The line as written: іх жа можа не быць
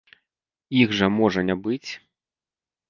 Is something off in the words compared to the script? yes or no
no